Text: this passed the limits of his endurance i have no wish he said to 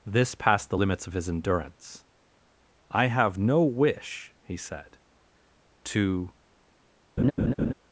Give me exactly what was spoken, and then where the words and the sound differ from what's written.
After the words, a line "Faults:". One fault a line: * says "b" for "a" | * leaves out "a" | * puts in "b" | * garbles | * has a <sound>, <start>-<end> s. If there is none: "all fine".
this passed the limits of his endurance i have no wish he said to
Faults:
* has a laugh, 7.2-7.7 s